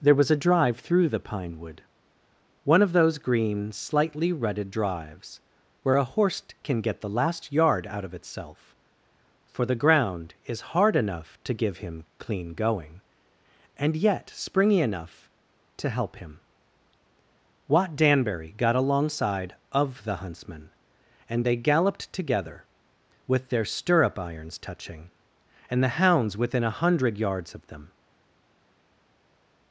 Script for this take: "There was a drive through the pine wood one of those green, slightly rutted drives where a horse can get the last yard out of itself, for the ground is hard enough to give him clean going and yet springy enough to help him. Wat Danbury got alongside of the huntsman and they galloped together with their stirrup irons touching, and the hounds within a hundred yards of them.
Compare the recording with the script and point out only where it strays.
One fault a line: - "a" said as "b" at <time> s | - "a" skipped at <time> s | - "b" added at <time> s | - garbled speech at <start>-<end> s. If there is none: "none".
none